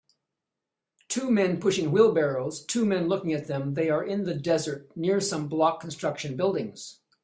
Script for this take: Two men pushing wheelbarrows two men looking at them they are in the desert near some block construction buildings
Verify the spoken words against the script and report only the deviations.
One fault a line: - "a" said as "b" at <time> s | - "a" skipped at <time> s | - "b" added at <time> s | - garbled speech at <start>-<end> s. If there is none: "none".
none